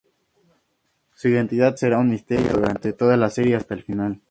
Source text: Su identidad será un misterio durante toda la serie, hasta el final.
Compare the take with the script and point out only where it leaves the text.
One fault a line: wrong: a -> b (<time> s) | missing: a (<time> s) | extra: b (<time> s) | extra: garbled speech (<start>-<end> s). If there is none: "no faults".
no faults